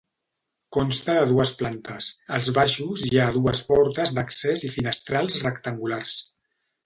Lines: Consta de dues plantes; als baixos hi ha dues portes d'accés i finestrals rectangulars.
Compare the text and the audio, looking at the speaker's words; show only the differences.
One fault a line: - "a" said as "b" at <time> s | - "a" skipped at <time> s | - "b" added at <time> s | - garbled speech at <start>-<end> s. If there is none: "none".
none